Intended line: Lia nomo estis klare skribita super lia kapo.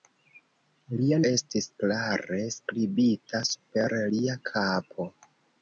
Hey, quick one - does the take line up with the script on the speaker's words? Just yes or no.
no